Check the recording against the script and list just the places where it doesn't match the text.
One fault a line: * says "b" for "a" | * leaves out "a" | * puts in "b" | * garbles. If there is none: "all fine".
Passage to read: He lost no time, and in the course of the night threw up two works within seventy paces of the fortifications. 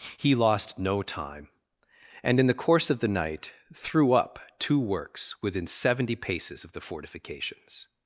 all fine